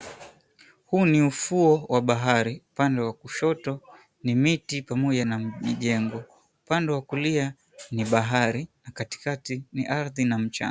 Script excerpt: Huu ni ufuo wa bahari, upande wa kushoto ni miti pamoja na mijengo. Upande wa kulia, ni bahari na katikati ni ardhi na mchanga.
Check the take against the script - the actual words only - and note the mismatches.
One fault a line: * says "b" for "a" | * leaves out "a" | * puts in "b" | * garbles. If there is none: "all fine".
all fine